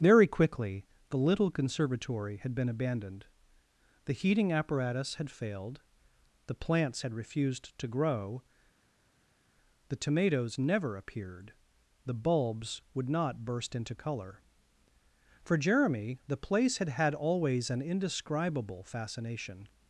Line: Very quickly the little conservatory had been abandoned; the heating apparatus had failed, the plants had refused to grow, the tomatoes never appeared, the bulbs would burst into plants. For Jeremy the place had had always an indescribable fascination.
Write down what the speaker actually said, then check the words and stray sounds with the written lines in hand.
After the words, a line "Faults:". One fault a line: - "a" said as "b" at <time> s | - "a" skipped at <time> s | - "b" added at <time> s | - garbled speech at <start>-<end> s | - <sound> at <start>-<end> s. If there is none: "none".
Very quickly the little conservatory had been abandoned; the heating apparatus had failed, the plants had refused to grow, the tomatoes never appeared, the bulbs would not burst into colour. For Jeremy the place had had always an indescribable fascination.
Faults:
- "not" added at 13.1 s
- "plants" said as "colour" at 14.0 s